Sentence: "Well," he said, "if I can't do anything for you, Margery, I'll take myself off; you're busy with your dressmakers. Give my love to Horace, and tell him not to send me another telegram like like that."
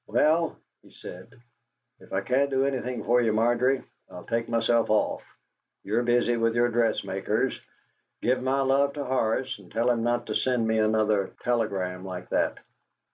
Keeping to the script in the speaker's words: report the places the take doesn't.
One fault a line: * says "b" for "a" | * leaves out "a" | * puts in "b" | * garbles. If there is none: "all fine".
* leaves out "like"